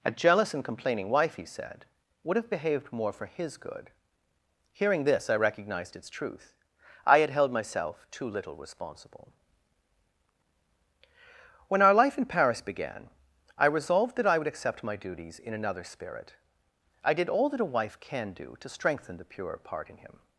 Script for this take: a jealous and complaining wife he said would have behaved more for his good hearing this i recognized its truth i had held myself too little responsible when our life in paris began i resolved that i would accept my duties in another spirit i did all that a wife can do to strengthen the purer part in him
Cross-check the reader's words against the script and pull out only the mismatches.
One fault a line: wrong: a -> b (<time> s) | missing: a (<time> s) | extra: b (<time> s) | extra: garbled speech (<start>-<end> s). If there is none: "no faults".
no faults